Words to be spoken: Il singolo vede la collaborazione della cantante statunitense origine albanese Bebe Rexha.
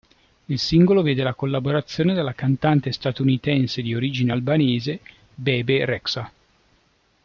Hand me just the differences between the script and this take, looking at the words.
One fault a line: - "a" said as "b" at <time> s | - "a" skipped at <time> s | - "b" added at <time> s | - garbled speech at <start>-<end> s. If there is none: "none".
- "di" added at 3.8 s